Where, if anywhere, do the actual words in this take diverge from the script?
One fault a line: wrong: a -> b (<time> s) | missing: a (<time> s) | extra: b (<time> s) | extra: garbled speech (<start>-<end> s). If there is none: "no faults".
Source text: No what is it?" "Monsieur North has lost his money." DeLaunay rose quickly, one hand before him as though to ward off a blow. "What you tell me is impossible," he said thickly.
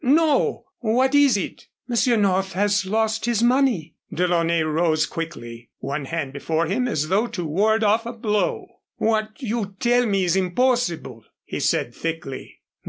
no faults